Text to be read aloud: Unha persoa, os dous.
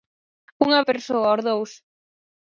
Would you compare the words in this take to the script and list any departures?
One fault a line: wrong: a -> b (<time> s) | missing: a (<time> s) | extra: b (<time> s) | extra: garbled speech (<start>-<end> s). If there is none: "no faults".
no faults